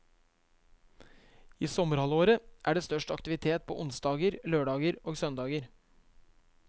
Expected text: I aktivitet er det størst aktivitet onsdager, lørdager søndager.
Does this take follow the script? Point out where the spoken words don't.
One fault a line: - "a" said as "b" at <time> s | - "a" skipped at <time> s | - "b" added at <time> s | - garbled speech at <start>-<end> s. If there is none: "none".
- "aktivitet" said as "sommerhalvåret" at 1.7 s
- "på" added at 3.7 s
- "og" added at 5.0 s